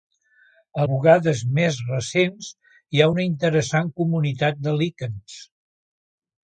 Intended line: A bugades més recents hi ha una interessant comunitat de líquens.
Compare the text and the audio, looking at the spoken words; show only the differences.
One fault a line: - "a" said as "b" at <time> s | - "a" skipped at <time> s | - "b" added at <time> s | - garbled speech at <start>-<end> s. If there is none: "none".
none